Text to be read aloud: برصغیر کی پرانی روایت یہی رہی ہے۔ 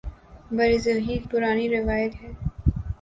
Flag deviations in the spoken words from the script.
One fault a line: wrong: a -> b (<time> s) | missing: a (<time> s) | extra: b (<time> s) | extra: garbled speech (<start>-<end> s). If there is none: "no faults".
missing: کی (1.2 s)
missing: یہی رہی (2.2 s)